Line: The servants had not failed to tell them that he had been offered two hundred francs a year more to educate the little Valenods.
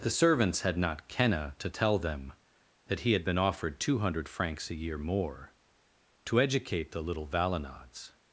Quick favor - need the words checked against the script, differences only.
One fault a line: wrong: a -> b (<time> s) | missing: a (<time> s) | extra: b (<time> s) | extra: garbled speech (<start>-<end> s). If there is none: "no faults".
wrong: failed -> kenna (1.1 s)